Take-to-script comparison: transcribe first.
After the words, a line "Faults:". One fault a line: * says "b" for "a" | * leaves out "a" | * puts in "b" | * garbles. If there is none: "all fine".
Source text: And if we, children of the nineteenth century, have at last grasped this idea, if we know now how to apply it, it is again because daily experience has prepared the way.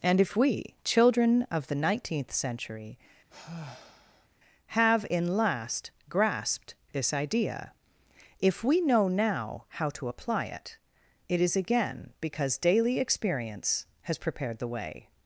And if we, children of the nineteenth century, have in last grasped this idea, if we know now how to apply it, it is again because daily experience has prepared the way.
Faults:
* says "in" for "at"